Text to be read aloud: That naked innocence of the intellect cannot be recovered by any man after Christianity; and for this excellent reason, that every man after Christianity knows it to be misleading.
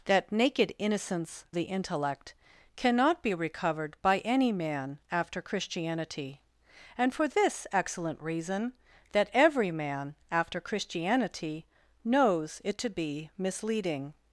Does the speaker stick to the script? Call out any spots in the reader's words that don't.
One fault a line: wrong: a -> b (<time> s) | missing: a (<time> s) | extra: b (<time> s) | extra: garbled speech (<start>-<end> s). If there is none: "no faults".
missing: of (1.4 s)